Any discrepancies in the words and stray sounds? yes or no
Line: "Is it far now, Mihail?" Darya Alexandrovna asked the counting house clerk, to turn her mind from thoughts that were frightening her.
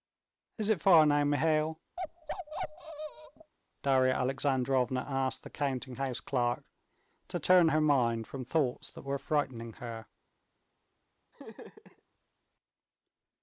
yes